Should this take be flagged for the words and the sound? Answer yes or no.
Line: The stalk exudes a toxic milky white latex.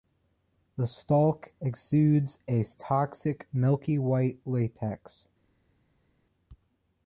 no